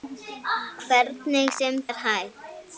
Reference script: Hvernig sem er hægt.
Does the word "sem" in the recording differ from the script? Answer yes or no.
no